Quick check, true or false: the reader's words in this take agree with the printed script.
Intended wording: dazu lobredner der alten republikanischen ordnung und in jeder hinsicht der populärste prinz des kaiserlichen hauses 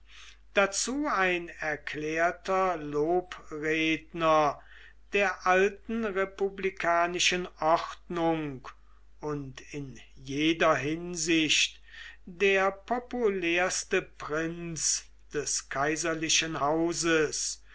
false